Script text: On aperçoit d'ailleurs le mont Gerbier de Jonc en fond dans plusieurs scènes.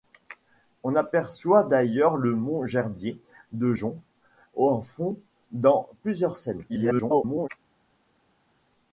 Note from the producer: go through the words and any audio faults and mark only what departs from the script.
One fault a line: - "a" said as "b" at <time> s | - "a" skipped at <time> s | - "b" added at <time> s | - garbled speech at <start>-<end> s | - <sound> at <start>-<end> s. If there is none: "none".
- garbled speech at 6.7-7.5 s